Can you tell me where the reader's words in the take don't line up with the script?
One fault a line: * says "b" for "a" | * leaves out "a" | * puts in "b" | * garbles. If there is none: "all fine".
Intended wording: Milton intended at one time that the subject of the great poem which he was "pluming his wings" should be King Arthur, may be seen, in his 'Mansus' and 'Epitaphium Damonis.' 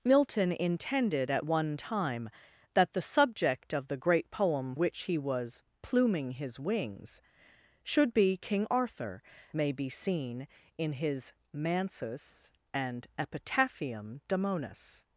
all fine